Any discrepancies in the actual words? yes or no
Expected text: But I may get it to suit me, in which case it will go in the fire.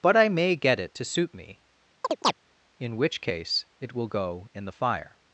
no